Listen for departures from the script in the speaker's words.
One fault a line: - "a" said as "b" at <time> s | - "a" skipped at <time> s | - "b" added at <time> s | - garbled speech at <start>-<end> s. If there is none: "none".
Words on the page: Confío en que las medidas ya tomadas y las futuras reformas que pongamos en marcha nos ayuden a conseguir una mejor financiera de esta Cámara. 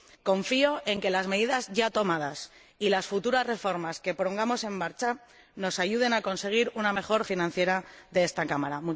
none